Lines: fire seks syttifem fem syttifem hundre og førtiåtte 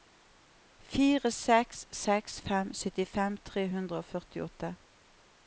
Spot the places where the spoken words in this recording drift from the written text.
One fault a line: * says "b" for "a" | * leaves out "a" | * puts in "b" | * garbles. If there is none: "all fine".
* says "seks" for "syttifem"
* puts in "tre"